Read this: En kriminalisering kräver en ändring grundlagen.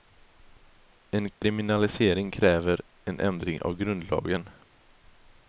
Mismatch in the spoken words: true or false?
true